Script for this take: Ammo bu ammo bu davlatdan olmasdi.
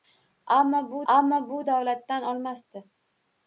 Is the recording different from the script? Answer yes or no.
no